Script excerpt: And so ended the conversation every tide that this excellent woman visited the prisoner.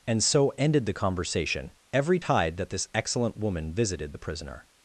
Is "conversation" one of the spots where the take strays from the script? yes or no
no